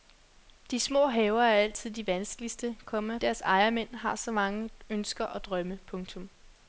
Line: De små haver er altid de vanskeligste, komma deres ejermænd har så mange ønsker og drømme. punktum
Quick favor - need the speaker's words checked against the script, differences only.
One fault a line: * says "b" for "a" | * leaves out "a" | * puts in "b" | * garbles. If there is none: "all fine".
all fine